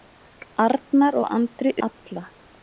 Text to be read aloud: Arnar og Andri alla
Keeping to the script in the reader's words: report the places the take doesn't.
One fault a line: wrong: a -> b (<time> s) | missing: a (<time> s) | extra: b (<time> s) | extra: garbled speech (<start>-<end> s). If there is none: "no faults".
no faults